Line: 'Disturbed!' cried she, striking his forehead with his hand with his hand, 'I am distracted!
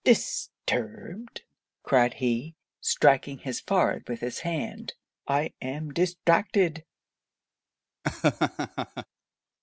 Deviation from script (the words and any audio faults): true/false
true